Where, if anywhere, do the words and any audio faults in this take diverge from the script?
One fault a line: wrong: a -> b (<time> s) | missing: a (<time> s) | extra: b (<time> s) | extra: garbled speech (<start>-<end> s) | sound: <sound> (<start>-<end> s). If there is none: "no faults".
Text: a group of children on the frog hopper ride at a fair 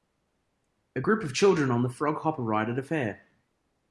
no faults